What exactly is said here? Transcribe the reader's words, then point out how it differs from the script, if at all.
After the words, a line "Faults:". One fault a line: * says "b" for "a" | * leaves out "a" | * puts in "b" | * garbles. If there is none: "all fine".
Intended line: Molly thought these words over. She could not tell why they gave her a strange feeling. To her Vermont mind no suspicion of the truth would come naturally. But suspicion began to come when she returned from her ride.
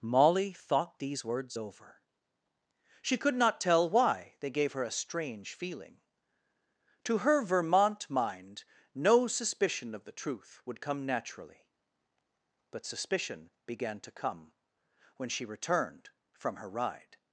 Molly thought these words over. She could not tell why they gave her a strange feeling. To her Vermont mind no suspicion of the truth would come naturally. But suspicion began to come when she returned from her ride.
Faults:
all fine